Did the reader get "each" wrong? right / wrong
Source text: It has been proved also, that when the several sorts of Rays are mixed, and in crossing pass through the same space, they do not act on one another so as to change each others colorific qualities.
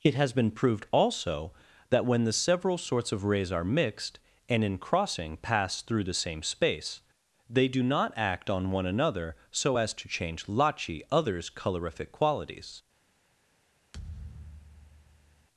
wrong